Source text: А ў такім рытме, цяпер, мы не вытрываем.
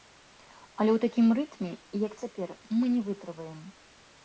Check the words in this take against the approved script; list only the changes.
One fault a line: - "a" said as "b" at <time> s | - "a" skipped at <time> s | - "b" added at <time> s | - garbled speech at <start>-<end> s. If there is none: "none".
- "А" said as "Але" at 0.8 s
- "як" added at 2.1 s